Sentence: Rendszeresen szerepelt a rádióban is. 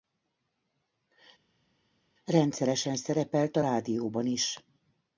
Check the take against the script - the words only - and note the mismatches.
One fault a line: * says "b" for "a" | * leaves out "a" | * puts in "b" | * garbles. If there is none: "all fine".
all fine